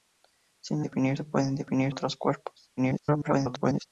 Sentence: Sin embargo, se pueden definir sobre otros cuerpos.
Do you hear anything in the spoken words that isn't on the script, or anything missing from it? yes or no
yes